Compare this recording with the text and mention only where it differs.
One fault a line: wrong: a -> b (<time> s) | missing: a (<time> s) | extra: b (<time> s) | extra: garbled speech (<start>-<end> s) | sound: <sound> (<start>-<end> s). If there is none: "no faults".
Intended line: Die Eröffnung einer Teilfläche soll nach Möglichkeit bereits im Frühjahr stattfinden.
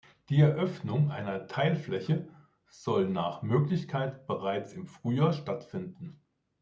no faults